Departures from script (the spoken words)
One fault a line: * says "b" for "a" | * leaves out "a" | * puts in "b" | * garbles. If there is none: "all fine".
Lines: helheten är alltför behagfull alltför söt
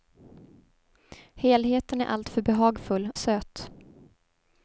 * leaves out "alltför"